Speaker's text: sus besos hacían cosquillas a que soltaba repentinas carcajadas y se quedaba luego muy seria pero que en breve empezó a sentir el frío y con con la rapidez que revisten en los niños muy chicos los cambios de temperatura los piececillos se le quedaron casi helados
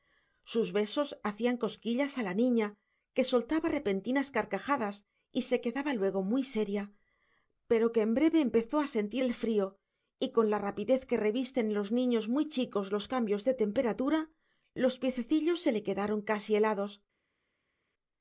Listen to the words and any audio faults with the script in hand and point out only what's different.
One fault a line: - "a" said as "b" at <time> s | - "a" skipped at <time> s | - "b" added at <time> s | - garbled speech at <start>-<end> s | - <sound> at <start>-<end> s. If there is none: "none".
- "la niña" added at 2.2 s
- "con" skipped at 10.5 s